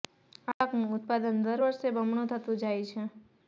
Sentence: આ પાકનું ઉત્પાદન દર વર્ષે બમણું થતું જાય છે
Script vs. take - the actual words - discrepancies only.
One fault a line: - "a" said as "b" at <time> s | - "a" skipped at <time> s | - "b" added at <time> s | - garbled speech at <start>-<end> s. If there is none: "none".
none